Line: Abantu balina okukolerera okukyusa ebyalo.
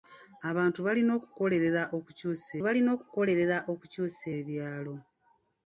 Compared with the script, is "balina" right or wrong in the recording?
right